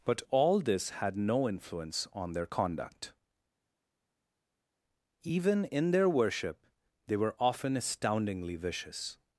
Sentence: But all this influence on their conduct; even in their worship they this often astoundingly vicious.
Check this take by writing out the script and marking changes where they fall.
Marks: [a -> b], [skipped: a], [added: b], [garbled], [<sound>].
But all this [added: had no] influence on their conduct; even in their worship they [this -> were] often astoundingly vicious.